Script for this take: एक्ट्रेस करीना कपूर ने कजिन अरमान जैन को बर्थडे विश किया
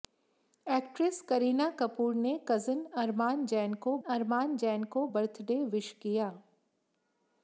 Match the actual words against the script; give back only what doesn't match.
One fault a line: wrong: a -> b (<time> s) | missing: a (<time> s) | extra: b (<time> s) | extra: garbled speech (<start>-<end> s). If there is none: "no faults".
extra: अरमान जैन को (4.1 s)